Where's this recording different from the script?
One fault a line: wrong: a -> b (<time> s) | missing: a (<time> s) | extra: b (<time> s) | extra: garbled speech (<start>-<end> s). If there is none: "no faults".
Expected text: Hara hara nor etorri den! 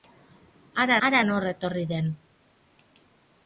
no faults